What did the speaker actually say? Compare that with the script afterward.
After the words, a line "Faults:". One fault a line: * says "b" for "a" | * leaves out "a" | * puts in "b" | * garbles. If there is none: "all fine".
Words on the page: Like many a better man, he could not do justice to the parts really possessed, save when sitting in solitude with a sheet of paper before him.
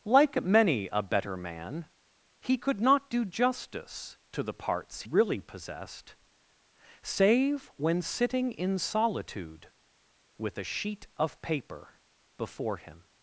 Like many a better man, he could not do justice to the parts really possessed, save when sitting in solitude with a sheet of paper before him.
Faults:
all fine